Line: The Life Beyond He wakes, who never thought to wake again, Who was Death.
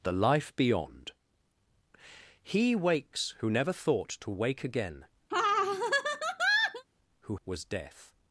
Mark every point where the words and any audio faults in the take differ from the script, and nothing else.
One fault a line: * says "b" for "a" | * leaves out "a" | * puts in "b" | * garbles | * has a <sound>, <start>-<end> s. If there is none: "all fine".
* has a laugh, 5.3-6.9 s